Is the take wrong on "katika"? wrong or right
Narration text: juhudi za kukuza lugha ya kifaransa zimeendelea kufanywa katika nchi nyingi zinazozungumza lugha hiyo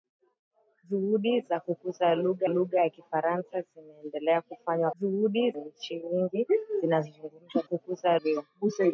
wrong